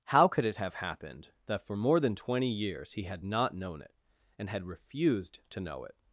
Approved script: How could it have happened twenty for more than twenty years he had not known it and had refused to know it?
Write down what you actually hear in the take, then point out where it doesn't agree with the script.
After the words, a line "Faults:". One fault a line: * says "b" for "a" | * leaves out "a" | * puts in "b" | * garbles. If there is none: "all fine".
How could it have happened that for more than twenty years he had not known it and had refused to know it?
Faults:
* says "that" for "twenty"